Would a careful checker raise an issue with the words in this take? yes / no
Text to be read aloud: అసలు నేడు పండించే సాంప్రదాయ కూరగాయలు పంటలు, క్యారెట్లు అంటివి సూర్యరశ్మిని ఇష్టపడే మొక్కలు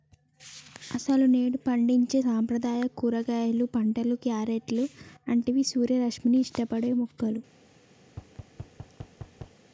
no